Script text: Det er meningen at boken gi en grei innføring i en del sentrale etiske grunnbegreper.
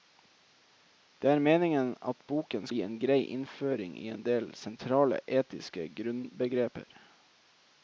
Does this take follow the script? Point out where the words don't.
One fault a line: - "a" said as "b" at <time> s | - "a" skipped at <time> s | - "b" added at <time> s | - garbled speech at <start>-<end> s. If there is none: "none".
none